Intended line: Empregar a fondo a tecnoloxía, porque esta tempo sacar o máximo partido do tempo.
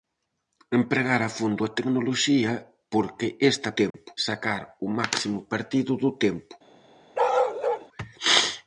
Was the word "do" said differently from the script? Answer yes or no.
no